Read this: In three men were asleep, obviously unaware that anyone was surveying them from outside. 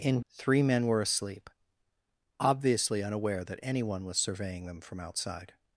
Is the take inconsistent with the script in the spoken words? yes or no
no